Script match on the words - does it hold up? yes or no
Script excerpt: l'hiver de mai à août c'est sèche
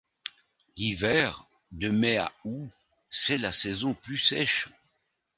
no